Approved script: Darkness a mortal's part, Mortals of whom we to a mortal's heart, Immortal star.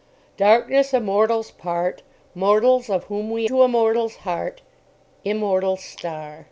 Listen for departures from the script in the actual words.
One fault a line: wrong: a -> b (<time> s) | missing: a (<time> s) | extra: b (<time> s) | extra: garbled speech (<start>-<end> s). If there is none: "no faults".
no faults